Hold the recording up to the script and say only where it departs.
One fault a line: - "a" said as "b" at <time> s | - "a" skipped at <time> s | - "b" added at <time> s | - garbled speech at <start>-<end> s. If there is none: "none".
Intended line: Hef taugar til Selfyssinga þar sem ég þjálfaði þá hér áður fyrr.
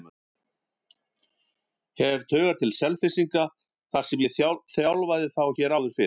none